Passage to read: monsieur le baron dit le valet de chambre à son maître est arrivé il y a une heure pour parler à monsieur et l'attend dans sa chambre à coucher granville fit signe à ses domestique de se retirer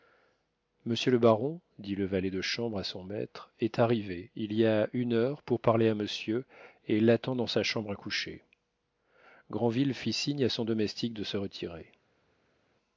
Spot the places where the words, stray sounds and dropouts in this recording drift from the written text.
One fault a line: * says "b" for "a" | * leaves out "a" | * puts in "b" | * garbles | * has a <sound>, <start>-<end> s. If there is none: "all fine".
* says "son" for "ses"